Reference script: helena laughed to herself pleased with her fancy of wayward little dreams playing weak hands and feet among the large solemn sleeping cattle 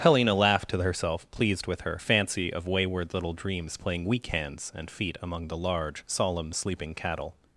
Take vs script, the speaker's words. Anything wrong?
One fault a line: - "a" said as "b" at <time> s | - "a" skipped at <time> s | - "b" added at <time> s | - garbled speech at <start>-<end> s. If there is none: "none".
none